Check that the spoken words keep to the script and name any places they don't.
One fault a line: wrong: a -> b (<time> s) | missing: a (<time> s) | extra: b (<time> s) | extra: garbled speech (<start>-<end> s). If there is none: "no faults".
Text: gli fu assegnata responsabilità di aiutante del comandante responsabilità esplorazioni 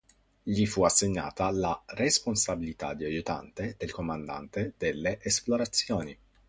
extra: la (1.5 s)
wrong: responsabilità -> delle (4.8 s)